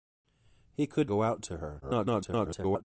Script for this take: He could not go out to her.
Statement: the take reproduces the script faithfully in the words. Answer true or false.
false